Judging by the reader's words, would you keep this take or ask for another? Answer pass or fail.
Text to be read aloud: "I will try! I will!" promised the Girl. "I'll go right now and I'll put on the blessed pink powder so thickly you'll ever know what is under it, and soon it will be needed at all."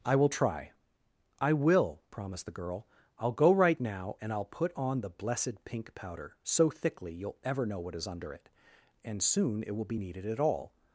pass